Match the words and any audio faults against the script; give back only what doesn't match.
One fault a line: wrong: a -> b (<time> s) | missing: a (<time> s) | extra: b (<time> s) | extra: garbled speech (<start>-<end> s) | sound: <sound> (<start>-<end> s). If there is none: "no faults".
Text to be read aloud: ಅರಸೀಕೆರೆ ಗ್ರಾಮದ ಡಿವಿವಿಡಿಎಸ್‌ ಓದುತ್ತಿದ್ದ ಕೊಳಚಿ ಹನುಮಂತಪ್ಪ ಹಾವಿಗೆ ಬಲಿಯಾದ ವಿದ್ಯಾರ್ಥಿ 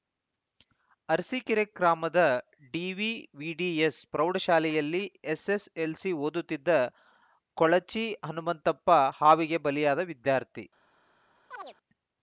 extra: ಪ್ರೌಢಶಾಲೆಯಲ್ಲಿ ಎಸ್‌ಎಸ್‌ಎಲ್‌ಸಿ (4.1 s)
sound: chirp (11.5-11.8 s)